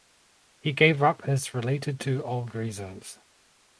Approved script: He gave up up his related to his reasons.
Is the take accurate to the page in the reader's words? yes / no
no